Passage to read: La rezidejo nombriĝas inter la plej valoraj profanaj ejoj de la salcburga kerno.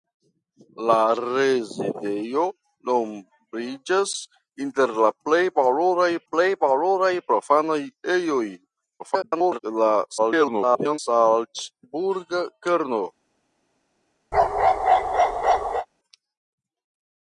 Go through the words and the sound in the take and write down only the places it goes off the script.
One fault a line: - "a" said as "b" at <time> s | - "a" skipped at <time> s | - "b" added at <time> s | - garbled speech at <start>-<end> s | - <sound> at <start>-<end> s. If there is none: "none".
- "plej valoraj" added at 6.3 s
- garbled speech at 9.0-9.6 s
- garbled speech at 10.2-11.0 s
- bark at 14.3-15.9 s